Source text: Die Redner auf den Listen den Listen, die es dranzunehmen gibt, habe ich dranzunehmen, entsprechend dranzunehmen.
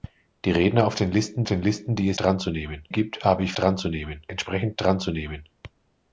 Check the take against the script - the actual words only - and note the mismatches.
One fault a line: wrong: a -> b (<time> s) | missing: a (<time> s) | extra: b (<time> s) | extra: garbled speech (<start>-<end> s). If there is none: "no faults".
no faults